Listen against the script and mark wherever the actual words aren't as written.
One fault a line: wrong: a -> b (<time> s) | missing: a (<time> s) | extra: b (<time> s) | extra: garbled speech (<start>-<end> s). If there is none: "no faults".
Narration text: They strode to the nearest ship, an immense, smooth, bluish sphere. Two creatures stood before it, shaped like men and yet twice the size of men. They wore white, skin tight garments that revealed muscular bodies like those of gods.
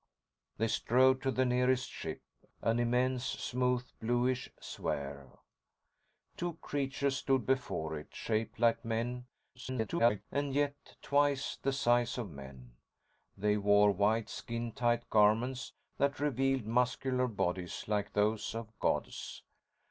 extra: garbled speech (9.5-10.2 s)